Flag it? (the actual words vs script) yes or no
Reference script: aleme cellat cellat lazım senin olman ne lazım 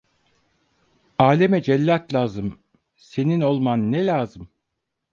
yes